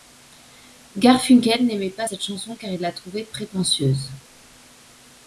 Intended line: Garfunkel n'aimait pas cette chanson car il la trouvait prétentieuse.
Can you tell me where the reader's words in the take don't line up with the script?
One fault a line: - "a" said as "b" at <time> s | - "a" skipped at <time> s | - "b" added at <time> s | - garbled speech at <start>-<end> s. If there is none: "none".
none